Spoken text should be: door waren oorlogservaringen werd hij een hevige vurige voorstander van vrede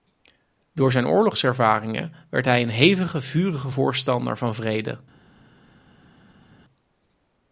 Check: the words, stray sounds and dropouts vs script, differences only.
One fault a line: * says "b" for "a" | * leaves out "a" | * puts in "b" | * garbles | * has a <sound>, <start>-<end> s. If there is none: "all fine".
* says "zijn" for "waren"